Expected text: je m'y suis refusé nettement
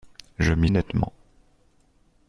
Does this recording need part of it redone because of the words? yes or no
yes